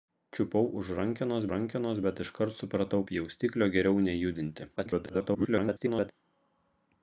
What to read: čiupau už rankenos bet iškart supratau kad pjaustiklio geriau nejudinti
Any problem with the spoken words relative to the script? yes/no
yes